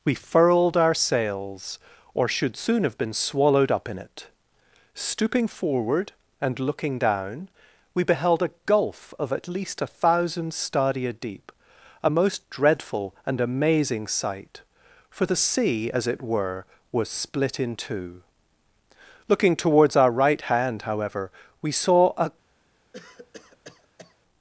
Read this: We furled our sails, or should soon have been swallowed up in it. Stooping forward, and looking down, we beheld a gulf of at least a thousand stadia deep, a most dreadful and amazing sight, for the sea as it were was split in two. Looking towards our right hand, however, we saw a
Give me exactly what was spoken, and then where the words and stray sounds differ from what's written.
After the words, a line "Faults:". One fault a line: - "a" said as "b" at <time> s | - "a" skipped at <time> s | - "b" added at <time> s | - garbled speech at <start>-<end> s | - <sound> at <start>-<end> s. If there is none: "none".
We furled our sails, or should soon have been swallowed up in it. Stooping forward, and looking down, we beheld a gulf of at least a thousand stadia deep, a most dreadful and amazing sight, for the sea as it were was split in two. Looking towards our right hand, however, we saw a
Faults:
- cough at 22.9-24.2 s